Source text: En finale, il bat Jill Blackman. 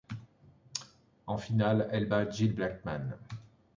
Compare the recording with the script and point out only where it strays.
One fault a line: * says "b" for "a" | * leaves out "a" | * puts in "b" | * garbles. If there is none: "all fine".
* says "elle" for "il"